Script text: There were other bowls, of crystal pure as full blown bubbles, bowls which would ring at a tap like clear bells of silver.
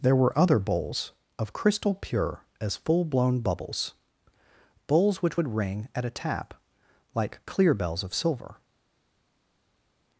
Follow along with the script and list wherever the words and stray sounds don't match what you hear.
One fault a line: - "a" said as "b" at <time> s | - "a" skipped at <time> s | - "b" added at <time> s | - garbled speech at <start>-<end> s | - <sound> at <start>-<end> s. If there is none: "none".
none